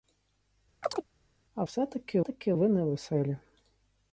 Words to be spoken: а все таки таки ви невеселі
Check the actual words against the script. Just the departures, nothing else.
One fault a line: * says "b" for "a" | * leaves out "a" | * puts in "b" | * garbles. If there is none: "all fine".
all fine